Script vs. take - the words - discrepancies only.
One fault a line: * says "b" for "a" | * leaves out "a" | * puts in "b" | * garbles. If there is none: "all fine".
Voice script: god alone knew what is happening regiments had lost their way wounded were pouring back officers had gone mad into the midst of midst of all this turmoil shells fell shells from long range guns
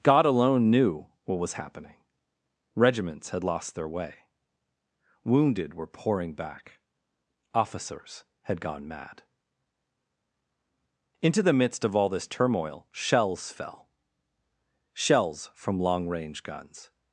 * says "was" for "is"
* leaves out "midst of"